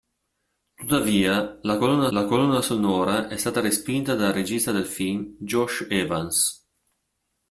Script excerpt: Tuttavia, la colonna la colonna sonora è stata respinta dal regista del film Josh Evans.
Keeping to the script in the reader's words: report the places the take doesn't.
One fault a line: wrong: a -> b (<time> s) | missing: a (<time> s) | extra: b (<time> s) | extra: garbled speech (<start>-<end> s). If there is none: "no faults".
no faults